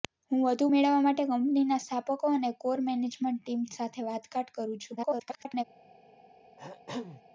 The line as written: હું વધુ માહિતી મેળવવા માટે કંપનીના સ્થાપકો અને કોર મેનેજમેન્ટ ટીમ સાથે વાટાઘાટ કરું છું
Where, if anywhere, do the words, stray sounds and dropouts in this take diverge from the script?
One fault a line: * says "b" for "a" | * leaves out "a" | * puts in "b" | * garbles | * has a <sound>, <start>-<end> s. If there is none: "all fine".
* leaves out "માહિતી"
* garbles
* has a throat clearing, 6.6-7.2 s